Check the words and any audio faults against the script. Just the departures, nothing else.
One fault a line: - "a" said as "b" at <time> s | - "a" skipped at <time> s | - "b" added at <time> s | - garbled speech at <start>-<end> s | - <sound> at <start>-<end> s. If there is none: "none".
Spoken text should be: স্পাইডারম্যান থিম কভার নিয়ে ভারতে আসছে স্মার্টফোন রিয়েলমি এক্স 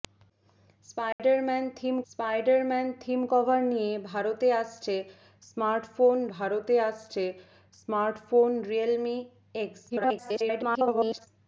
- dropout at 1.1-1.2 s
- "স্পাইডারম্যান থিম" added at 2.1 s
- "ভারতে আসছে স্মার্টফোন" added at 6.3 s
- garbled speech at 9.9-11.3 s